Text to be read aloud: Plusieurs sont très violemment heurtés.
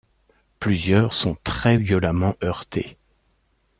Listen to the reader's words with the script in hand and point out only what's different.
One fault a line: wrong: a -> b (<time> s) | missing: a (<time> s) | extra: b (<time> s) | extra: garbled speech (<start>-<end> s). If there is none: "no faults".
no faults